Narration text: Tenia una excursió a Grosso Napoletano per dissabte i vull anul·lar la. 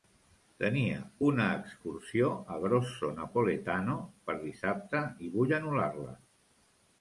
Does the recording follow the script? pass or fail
pass